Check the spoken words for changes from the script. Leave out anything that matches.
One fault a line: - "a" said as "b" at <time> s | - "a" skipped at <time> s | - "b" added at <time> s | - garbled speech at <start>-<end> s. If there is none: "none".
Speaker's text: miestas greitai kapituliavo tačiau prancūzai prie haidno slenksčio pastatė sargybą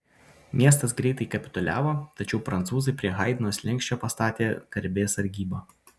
- "garbės" added at 4.8 s